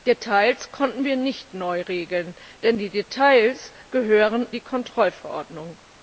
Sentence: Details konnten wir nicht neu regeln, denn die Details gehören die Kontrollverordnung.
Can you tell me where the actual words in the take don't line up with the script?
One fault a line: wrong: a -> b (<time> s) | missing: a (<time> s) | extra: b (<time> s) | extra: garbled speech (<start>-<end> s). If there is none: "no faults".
no faults